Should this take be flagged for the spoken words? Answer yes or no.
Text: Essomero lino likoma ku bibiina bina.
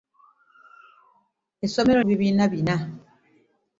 yes